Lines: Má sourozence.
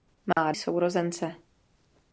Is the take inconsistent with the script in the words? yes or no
no